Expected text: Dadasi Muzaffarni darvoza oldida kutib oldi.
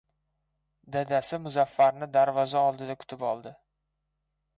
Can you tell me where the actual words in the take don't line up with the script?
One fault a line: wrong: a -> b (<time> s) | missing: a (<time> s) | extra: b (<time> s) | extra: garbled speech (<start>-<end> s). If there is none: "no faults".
no faults